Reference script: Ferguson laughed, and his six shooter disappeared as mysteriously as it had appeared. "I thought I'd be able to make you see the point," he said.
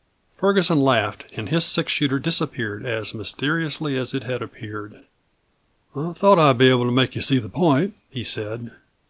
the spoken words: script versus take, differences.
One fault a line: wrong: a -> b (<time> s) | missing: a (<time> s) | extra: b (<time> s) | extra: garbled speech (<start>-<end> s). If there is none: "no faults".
no faults